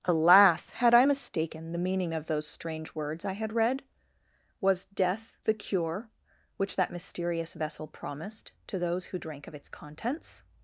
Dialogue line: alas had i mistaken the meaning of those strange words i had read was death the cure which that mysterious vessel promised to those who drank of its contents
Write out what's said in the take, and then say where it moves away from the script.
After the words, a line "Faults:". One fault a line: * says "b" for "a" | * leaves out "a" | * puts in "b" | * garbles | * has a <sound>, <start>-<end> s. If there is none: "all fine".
alas had i mistaken the meaning of those strange words i had read was death the cure which that mysterious vessel promised to those who drank of its contents
Faults:
all fine